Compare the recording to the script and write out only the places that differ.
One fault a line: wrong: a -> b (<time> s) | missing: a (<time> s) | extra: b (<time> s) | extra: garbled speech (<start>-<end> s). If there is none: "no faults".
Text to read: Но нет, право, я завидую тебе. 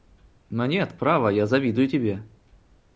no faults